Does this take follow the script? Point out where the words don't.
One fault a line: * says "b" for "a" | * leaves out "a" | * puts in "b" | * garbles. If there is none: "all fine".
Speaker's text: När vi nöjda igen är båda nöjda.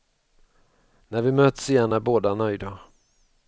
* says "möts" for "nöjda"